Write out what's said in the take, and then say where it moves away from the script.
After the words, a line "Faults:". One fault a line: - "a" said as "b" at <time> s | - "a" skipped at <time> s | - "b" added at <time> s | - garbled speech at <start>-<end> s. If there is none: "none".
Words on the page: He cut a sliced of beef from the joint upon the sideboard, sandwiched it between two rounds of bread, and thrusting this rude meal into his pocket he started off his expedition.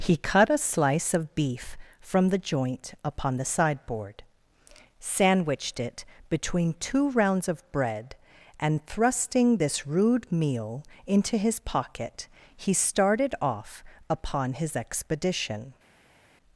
He cut a slice of beef from the joint upon the sideboard, sandwiched it between two rounds of bread, and thrusting this rude meal into his pocket he started off upon his expedition.
Faults:
- "sliced" said as "slice" at 0.6 s
- "upon" added at 14.1 s